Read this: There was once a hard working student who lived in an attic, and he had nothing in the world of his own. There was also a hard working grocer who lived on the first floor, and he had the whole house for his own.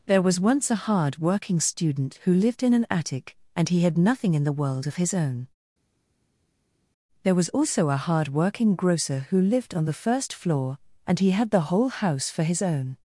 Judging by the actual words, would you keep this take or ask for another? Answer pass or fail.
pass